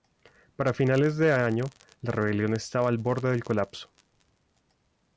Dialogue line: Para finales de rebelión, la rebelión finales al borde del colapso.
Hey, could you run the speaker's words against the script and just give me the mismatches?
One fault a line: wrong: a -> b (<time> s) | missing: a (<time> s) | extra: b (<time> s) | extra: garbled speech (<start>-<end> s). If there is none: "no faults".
wrong: rebelión -> año (1.3 s)
wrong: finales -> estaba (2.5 s)